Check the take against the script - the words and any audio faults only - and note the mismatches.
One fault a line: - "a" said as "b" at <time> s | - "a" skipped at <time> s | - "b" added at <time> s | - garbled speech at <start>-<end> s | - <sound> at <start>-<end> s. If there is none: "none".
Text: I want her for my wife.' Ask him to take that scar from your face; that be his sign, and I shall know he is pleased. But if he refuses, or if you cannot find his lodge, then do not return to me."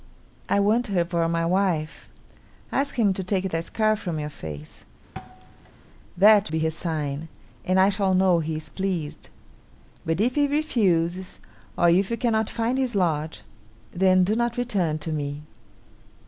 - thud at 5.1-5.9 s